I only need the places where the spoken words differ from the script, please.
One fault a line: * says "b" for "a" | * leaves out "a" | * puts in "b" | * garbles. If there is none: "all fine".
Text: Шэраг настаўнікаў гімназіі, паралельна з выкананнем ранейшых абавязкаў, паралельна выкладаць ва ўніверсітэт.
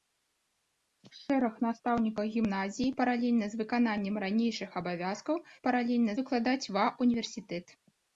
all fine